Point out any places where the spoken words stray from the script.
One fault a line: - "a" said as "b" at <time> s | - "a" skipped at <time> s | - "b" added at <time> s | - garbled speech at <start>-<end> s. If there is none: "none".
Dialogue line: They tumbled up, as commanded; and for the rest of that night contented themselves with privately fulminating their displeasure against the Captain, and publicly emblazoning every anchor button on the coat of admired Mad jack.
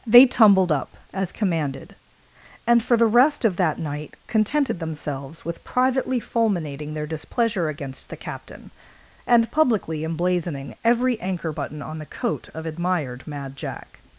none